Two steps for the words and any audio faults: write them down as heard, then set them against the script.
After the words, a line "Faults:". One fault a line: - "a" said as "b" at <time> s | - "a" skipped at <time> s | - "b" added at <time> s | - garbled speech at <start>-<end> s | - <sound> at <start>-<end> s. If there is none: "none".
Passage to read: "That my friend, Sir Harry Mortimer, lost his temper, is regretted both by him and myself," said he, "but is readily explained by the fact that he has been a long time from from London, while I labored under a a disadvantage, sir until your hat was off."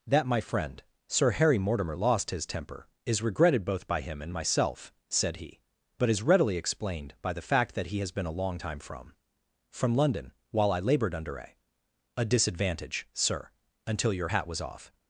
"That my friend, Sir Harry Mortimer, lost his temper, is regretted both by him and myself," said he, "but is readily explained by the fact that he has been a long time from from London, while I labored under a a disadvantage, sir until your hat was off."
Faults:
none